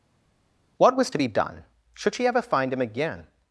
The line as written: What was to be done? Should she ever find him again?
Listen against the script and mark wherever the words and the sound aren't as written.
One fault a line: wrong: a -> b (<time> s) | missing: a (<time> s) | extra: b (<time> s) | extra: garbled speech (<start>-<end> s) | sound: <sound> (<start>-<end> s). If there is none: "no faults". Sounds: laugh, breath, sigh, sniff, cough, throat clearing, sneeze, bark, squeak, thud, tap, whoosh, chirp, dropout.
no faults